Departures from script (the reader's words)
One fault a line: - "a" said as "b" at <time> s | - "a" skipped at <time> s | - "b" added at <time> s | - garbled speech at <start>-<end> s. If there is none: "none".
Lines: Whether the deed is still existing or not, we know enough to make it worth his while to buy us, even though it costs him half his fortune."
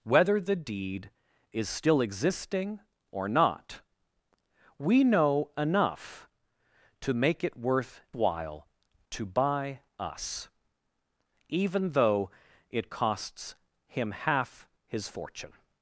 - "his" skipped at 8.0 s